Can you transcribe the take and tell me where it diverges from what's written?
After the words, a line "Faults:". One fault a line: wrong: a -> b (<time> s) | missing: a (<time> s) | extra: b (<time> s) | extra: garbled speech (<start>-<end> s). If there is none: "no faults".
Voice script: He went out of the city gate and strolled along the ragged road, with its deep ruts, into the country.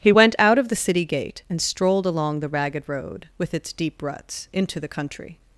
He went out of the city gate and strolled along the ragged road, with its deep ruts, into the country.
Faults:
no faults